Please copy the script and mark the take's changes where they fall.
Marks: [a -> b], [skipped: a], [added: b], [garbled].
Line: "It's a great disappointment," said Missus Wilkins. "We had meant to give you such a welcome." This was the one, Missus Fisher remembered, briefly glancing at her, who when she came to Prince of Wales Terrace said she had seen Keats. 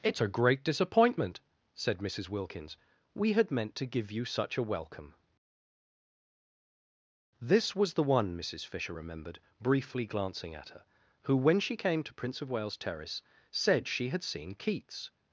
"It's a great disappointment," said Missus Wilkins. "We had meant to give you such a welcome." This was the one, Missus Fisher remembered, briefly glancing at her, who when she came to Prince of Wales Terrace said she had seen Keats.